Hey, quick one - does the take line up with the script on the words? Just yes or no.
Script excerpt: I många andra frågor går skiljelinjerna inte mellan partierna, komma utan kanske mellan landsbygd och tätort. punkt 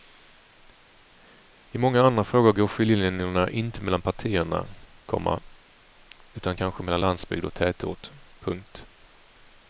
yes